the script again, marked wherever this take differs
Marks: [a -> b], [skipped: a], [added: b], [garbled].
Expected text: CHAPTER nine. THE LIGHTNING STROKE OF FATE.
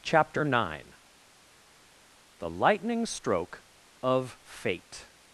CHAPTER nine. THE LIGHTNING STROKE OF FATE.